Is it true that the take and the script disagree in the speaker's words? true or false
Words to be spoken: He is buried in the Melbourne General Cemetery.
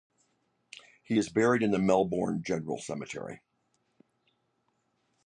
false